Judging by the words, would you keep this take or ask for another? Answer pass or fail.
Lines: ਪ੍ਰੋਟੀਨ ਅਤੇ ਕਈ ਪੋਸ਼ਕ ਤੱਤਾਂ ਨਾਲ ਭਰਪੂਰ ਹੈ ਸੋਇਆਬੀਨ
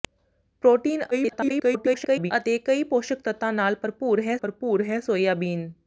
fail